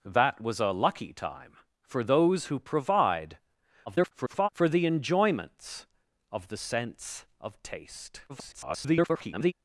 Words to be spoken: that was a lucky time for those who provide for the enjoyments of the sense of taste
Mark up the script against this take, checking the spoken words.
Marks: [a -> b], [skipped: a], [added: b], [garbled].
that was a lucky time for those who provide [garbled] for the enjoyments of the sense of taste [garbled]